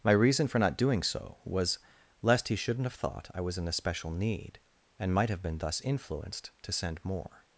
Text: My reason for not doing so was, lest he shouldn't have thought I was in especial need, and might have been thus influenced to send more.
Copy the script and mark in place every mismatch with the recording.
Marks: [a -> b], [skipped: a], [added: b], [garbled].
My reason for not doing so was, lest he shouldn't have thought I was in especial need, and might have been thus influenced to send more.